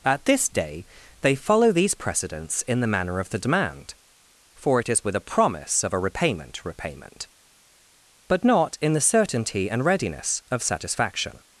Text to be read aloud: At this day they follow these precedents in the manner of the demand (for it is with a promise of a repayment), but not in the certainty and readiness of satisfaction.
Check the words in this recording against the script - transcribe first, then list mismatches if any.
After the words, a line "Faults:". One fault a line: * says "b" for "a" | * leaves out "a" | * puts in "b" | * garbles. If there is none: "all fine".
At this day they follow these precedents in the manner of the demand (for it is with a promise of a repayment repayment), but not in the certainty and readiness of satisfaction.
Faults:
* puts in "repayment"